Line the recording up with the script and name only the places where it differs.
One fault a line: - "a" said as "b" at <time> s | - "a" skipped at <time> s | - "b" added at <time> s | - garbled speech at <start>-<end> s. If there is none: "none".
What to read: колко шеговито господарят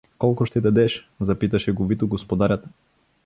- "ще дадеш запита" added at 0.4 s